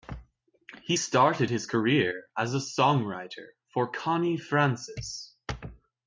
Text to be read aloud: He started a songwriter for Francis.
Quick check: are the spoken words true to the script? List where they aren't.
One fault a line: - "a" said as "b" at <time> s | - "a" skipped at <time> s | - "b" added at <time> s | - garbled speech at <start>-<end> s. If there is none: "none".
- "his career as" added at 1.5 s
- "Connie" added at 3.9 s